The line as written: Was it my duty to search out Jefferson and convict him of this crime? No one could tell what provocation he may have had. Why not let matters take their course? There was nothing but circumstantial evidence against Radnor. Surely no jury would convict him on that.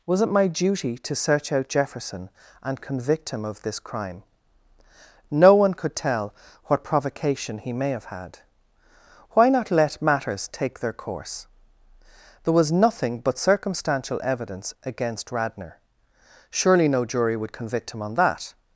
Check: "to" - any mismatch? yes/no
no